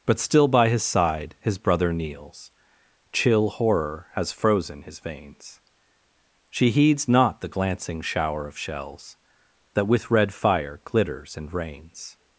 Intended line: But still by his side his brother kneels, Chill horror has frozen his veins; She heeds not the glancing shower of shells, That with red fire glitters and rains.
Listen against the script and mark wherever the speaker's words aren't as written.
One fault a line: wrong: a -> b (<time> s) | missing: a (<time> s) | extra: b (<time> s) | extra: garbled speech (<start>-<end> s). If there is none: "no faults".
no faults